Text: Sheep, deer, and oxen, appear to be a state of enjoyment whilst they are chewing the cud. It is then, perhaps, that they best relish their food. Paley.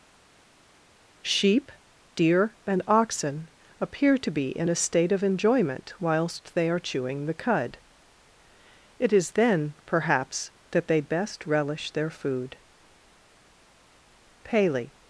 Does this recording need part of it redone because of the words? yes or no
yes